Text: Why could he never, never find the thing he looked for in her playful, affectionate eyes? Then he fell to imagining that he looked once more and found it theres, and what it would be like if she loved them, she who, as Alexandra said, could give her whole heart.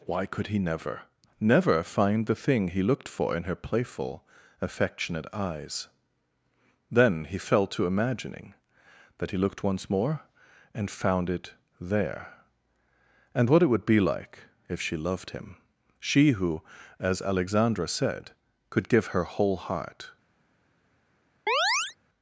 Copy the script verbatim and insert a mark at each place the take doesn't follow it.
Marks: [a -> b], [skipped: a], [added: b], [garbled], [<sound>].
Why could he never, never find the thing he looked for in her playful, affectionate eyes? Then he fell to imagining that he looked once more and found it [theres, -> there] and what it would be like if she loved [them, -> him] she who, as Alexandra said, could give her whole heart. [chirp]